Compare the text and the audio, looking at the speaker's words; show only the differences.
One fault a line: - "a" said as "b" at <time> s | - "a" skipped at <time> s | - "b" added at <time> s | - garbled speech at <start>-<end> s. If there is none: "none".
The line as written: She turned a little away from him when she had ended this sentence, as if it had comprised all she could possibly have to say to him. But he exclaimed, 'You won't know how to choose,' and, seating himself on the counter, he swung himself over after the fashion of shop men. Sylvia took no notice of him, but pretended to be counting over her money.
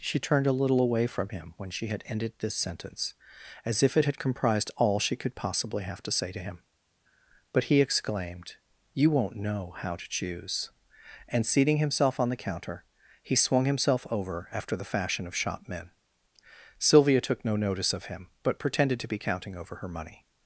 none